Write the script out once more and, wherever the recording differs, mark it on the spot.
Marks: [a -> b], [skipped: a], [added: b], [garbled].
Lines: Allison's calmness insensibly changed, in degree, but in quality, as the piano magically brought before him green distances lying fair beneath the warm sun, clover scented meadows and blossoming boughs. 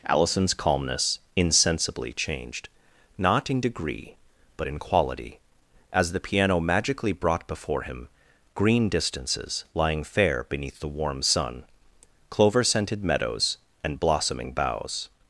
Allison's calmness insensibly changed, [added: not] in degree, but in quality, as the piano magically brought before him green distances lying fair beneath the warm sun, clover scented meadows and blossoming boughs.